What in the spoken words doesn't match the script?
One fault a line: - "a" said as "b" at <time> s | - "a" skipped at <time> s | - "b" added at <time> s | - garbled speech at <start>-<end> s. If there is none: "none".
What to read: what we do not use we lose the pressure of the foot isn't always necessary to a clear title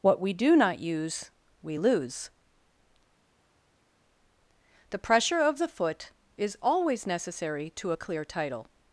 - "isn't" said as "is" at 6.4 s